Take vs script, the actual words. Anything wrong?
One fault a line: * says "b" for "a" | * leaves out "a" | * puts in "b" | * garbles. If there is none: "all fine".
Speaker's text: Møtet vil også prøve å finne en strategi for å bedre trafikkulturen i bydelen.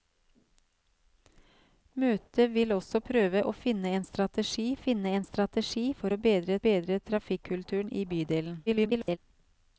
* puts in "finne en strategi"
* puts in "bedre"
* garbles